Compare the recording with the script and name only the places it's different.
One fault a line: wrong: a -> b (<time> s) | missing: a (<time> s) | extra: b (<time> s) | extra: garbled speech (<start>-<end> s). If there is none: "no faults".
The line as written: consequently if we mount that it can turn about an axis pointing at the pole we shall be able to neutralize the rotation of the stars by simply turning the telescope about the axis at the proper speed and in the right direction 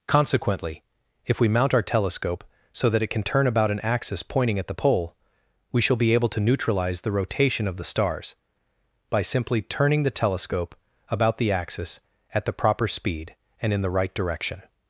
extra: our telescope so (1.7 s)